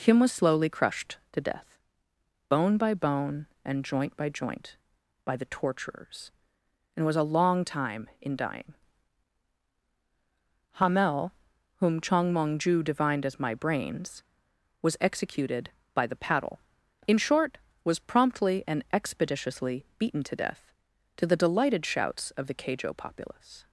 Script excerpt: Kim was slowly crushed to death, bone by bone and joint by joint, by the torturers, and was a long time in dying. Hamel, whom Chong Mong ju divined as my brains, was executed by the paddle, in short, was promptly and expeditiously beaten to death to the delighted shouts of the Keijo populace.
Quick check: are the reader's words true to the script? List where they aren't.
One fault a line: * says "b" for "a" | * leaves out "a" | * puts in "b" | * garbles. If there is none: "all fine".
all fine